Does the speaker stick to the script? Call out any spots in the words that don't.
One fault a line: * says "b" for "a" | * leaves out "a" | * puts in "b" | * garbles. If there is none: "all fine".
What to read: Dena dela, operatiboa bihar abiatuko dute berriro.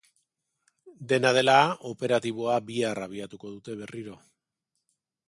all fine